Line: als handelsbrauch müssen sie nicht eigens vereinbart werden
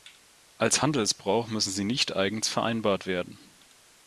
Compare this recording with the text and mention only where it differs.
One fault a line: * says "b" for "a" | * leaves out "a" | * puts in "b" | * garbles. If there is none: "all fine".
all fine